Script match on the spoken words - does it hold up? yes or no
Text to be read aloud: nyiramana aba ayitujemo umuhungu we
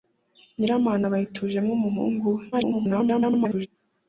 no